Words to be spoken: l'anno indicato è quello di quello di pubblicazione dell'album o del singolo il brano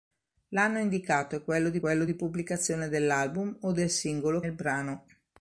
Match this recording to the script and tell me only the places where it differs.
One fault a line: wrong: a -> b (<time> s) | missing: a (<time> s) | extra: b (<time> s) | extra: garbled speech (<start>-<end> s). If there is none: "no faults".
no faults